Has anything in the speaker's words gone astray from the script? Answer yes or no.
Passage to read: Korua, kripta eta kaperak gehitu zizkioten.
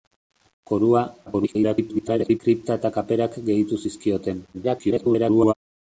yes